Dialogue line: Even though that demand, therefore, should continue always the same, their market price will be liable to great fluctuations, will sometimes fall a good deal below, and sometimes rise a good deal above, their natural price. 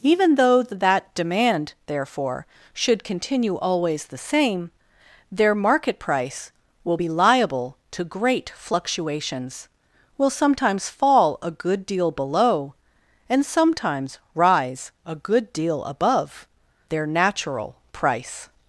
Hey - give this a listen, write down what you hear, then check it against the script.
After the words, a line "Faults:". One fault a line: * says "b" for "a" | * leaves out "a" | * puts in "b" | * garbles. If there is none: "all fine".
Even though that demand, therefore, should continue always the same, their market price will be liable to great fluctuations, will sometimes fall a good deal below, and sometimes rise a good deal above, their natural price.
Faults:
all fine